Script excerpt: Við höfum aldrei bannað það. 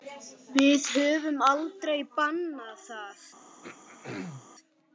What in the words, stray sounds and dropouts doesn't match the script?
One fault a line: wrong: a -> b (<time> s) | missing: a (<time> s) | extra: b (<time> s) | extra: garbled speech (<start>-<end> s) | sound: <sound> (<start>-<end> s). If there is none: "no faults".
sound: throat clearing (3.6-4.5 s)